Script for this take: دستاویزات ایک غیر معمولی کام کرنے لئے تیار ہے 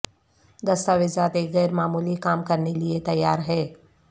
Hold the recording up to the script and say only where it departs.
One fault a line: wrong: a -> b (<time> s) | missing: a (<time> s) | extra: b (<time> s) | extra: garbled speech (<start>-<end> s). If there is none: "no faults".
no faults